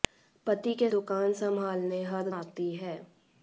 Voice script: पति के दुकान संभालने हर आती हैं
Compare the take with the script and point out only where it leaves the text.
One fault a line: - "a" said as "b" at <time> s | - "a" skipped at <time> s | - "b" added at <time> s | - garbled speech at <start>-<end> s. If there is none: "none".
none